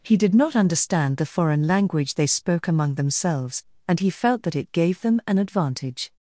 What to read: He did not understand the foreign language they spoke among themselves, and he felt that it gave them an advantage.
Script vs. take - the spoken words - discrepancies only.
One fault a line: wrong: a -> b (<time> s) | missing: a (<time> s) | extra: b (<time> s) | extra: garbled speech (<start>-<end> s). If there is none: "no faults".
no faults